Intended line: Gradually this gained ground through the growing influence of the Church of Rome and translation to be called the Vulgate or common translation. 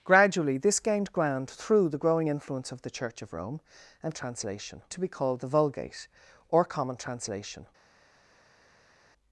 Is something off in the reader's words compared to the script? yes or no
no